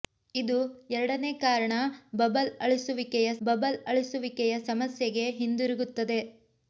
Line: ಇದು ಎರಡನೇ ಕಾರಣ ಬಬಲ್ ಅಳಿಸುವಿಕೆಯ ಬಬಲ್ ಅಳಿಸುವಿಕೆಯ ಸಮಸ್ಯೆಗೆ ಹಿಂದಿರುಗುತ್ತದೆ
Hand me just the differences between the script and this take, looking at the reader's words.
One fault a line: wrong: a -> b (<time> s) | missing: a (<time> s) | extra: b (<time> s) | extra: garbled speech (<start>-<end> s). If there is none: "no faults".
no faults